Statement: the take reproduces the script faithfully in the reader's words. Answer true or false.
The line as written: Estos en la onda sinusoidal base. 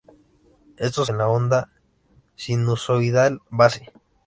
true